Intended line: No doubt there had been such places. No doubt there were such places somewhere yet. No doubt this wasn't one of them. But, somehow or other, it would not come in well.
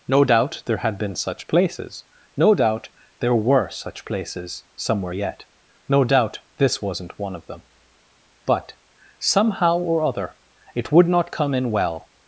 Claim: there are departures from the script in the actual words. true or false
false